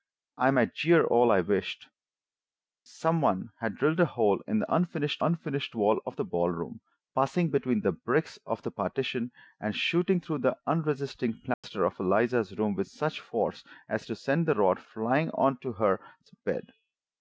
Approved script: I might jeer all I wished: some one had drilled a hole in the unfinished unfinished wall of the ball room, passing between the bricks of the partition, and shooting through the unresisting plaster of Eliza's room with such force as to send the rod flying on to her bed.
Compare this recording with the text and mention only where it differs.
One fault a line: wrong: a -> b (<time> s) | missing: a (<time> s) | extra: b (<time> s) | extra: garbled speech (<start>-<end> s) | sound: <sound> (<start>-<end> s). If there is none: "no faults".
sound: dropout (11.5-11.6 s)